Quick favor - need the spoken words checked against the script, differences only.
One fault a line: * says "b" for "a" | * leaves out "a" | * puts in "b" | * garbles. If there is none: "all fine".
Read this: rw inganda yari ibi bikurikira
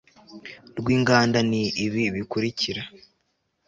* says "ni" for "yari"